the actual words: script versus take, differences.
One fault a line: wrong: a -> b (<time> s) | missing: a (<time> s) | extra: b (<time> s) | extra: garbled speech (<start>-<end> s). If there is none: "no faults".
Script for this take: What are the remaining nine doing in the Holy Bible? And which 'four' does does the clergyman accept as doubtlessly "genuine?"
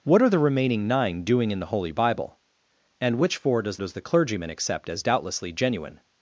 no faults